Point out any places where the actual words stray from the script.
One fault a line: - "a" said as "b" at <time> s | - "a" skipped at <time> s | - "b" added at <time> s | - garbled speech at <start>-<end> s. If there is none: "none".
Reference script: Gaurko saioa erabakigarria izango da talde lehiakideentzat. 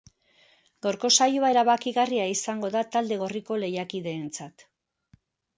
- "gorriko" added at 3.2 s